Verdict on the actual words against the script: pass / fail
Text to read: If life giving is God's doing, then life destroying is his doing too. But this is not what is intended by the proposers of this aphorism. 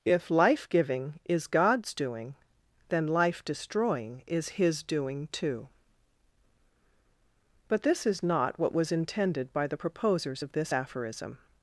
fail